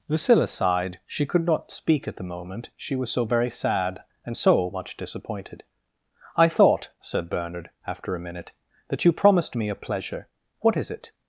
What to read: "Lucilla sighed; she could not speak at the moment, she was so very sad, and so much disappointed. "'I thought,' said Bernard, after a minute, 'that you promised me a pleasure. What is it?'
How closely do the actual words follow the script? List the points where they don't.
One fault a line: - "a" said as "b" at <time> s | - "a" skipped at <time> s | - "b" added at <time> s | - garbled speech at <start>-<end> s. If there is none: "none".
none